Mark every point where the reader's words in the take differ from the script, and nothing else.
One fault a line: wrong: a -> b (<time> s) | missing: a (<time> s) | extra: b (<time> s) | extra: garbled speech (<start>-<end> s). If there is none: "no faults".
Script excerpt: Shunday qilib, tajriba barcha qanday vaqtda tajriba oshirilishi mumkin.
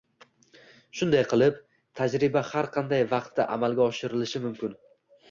wrong: barcha -> har (2.5 s)
wrong: tajriba -> amalga (3.6 s)